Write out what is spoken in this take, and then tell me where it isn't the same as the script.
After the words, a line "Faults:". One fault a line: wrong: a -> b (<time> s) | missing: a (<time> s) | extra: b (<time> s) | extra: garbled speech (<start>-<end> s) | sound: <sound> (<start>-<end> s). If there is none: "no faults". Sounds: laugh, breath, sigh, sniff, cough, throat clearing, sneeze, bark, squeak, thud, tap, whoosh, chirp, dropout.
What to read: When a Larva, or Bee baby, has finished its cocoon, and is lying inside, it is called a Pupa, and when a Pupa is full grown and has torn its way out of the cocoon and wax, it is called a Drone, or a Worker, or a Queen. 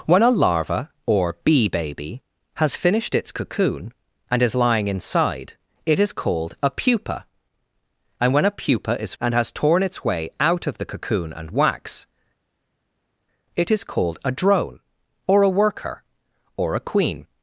When a Larva, or Bee baby, has finished its cocoon, and is lying inside, it is called a Pupa, and when a Pupa is and has torn its way out of the cocoon and wax, it is called a Drone, or a Worker, or a Queen.
Faults:
missing: full grown (9.1 s)